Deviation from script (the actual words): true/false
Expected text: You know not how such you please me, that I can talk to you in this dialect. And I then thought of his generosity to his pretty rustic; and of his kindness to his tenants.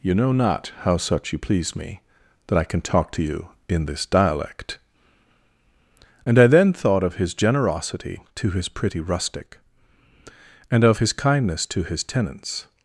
false